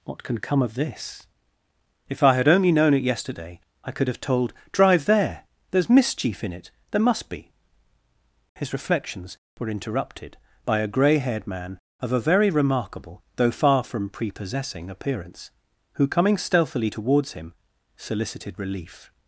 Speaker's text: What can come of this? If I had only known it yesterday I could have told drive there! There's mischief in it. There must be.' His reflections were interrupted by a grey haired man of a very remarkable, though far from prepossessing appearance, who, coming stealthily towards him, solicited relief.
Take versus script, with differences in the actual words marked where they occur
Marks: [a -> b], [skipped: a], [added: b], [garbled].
What can come of this? If I had only known it yesterday I could have told drive there! There's mischief in it. There must be.' His reflections were interrupted by a grey haired man of a very remarkable, though far from prepossessing appearance, who, coming stealthily towards him, solicited relief.